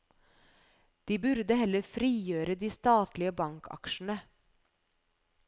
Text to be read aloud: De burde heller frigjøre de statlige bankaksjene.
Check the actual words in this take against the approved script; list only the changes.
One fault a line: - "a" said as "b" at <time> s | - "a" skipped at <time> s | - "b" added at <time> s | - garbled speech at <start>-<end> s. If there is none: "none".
none